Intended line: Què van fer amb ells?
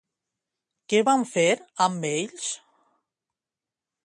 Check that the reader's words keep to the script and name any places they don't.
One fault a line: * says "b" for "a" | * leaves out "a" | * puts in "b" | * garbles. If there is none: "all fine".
all fine